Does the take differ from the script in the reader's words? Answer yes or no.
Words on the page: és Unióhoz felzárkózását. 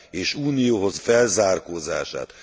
no